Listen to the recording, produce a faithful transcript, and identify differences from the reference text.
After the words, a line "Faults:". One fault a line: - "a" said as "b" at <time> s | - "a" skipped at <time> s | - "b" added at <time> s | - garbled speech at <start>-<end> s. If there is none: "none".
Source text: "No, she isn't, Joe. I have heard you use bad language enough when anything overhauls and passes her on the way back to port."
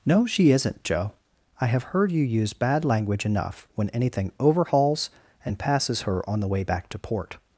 "No, she isn't, Joe. I have heard you use bad language enough when anything overhauls and passes her on the way back to port."
Faults:
none